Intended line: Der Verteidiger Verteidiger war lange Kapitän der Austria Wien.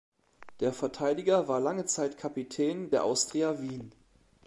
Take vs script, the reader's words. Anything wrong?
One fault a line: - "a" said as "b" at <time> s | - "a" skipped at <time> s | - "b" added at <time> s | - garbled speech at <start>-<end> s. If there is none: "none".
- "Verteidiger" skipped at 1.5 s
- "Zeit" added at 1.9 s